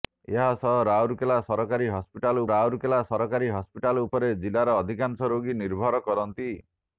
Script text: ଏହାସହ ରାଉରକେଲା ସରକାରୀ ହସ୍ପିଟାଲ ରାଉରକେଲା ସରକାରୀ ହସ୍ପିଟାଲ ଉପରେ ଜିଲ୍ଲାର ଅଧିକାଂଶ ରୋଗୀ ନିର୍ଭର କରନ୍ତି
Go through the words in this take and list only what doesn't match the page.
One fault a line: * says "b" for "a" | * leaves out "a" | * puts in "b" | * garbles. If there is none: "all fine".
all fine